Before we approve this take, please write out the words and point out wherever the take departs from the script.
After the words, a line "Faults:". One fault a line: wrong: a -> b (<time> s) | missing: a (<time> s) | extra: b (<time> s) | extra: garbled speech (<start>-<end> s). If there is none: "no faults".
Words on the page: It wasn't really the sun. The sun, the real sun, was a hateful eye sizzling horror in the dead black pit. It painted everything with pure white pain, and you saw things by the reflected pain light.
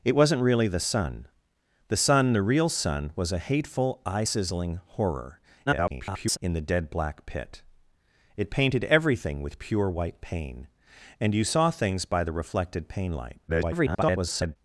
It wasn't really the sun. The sun, the real sun, was a hateful eye sizzling horror [garbled] in the dead black pit. It painted everything with pure white pain, and you saw things by the reflected pain light. [garbled]
Faults:
extra: garbled speech (5.7-6.4 s)
extra: garbled speech (13.5-14.6 s)